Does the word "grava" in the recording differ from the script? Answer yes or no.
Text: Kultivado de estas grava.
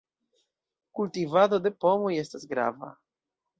no